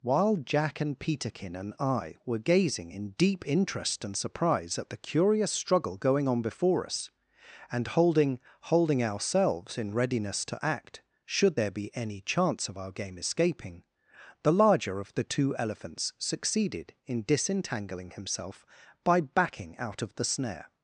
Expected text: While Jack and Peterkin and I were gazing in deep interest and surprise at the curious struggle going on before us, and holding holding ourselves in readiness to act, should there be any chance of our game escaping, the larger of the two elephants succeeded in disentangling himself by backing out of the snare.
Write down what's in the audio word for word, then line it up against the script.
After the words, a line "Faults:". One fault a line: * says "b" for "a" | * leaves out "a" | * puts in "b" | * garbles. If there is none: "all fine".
While Jack and Peterkin and I were gazing in deep interest and surprise at the curious struggle going on before us, and holding holding ourselves in readiness to act, should there be any chance of our game escaping, the larger of the two elephants succeeded in disentangling himself by backing out of the snare.
Faults:
all fine